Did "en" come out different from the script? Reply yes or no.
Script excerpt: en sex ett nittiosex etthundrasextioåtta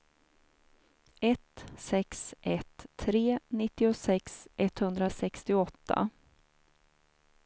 yes